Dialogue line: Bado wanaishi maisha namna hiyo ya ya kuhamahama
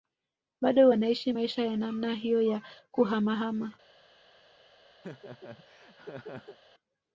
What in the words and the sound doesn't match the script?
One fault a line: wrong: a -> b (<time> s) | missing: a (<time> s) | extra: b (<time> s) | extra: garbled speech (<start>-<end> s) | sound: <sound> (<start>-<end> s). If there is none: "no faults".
extra: ya (1.7 s)
missing: ya (2.6 s)
sound: laugh (5.0-6.6 s)